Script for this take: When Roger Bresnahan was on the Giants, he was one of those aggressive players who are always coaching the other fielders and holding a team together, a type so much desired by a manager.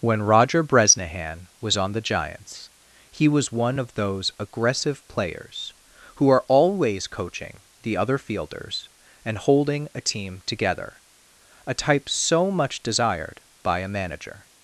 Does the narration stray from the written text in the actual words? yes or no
no